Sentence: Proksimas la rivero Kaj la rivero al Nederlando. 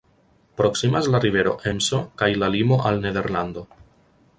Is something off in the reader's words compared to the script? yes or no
yes